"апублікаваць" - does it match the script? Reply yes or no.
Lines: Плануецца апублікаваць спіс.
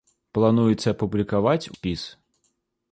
yes